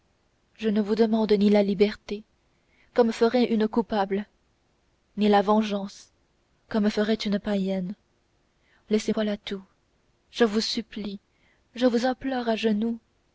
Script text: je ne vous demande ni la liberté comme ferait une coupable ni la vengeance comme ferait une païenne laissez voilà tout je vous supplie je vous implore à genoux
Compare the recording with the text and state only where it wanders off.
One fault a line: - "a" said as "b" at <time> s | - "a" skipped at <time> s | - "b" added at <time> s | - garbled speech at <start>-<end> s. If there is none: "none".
none